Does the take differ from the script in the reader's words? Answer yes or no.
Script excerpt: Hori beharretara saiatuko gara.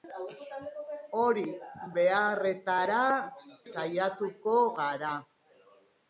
no